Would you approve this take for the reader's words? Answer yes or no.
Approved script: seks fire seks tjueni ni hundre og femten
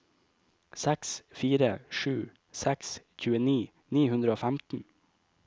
no